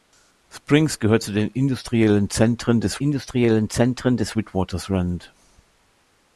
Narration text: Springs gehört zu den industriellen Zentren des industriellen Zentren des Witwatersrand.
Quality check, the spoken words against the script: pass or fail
pass